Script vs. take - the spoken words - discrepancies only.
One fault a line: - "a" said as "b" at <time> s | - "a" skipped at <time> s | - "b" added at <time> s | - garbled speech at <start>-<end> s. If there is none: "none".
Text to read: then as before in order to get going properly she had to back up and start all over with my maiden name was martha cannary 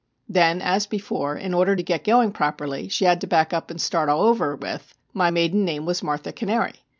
none